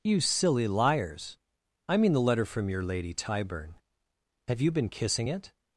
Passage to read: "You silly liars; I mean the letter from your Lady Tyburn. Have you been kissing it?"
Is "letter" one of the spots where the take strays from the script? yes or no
no